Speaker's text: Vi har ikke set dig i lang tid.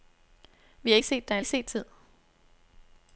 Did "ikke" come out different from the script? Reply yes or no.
yes